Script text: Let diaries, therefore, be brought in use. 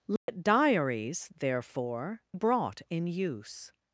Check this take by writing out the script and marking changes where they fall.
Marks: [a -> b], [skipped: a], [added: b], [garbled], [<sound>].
Let [dropout] diaries, therefore, [skipped: be] brought in use.